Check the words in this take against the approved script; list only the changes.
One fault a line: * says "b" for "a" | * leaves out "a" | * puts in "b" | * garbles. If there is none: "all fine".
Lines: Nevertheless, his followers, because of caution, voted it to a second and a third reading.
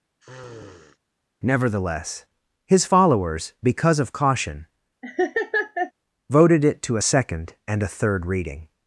all fine